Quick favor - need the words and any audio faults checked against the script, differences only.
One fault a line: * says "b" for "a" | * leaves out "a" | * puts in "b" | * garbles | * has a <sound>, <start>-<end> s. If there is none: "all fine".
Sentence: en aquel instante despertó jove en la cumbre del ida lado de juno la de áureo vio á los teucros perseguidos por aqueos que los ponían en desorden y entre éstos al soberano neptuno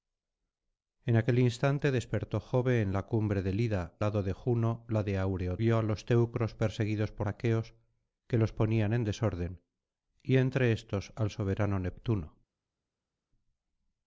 all fine